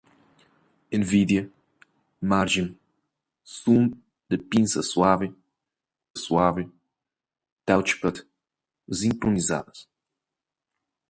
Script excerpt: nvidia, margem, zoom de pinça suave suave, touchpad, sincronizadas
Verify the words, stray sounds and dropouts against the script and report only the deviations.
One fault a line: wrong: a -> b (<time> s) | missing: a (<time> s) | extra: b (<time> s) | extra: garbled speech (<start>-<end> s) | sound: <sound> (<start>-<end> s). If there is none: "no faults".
no faults